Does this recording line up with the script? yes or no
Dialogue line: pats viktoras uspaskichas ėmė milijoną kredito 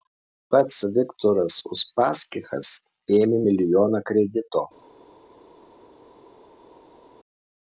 yes